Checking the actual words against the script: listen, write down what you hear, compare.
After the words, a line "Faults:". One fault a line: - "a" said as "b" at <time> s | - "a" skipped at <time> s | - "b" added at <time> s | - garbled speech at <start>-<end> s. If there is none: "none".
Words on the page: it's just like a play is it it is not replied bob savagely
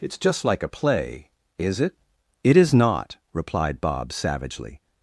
it's just like a play is it it is not replied bob savagely
Faults:
none